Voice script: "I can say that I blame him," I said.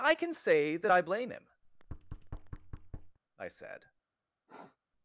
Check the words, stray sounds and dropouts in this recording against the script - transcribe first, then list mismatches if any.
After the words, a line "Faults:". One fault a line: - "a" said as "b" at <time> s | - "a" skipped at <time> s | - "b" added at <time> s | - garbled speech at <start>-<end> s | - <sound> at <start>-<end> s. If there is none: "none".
"I can say that I blame him," I said.
Faults:
- thud at 1.6-3.2 s
- sniff at 4.5-4.8 s